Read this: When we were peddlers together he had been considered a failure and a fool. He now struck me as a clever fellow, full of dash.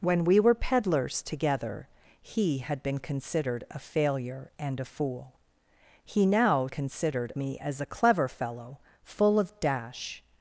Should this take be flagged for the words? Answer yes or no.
yes